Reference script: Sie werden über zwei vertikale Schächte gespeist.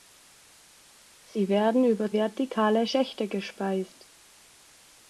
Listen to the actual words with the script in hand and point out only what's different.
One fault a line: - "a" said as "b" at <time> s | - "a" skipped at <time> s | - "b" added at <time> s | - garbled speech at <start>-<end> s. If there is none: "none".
- "zwei" skipped at 2.1 s